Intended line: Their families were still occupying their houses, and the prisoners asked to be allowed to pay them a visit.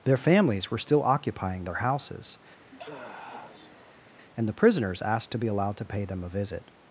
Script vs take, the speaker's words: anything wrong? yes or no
no